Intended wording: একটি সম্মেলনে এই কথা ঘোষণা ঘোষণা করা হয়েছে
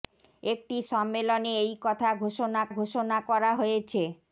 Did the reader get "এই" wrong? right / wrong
right